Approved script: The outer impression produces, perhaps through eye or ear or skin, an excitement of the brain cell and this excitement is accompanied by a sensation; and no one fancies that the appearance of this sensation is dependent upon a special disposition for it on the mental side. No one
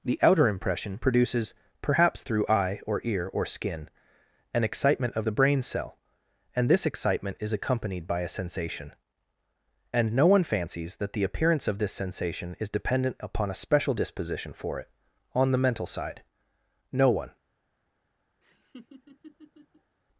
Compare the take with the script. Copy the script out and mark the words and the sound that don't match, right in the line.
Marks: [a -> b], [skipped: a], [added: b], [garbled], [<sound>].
The outer impression produces, perhaps through eye or ear or skin, an excitement of the brain cell and this excitement is accompanied by a sensation; and no one fancies that the appearance of this sensation is dependent upon a special disposition for it on the mental side. No one [laugh]